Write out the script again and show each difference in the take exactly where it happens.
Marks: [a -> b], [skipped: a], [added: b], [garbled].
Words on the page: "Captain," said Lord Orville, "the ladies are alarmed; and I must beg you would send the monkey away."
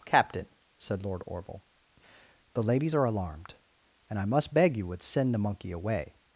"Captain," said Lord Orville, "the ladies are alarmed; and I must beg you would send the monkey away."